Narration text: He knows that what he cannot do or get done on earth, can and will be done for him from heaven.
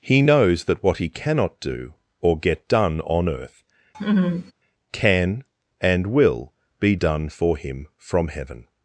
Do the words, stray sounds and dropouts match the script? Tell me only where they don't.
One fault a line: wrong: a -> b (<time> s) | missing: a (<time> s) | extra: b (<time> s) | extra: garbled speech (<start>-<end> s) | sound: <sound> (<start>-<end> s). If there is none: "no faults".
sound: laugh (3.9-4.5 s)